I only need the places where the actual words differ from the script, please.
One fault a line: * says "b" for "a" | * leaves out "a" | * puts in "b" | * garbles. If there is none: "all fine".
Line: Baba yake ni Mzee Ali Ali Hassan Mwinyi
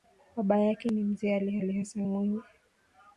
all fine